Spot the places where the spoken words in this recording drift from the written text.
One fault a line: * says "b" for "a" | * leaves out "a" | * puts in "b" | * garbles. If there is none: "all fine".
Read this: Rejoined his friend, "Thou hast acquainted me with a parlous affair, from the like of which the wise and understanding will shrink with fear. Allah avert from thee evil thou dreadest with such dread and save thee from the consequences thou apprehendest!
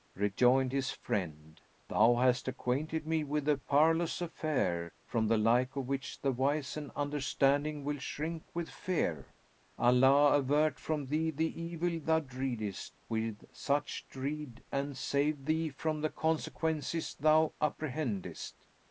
* puts in "the"